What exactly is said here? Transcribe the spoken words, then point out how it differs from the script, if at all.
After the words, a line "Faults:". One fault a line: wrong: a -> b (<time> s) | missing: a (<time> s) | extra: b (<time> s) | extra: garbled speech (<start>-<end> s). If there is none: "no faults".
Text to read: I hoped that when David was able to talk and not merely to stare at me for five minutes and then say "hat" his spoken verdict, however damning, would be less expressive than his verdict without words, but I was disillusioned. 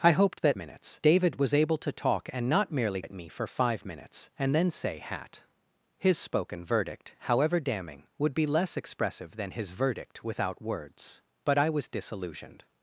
I hoped that minutes David was able to talk and not merely at me for five minutes and then say "hat" his spoken verdict, however damning, would be less expressive than his verdict without words, but I was disillusioned.
Faults:
wrong: when -> minutes (0.5 s)
missing: to stare (3.0 s)